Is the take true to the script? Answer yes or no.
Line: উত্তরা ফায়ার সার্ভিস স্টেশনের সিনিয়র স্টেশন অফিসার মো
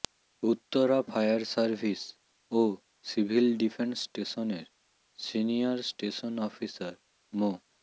no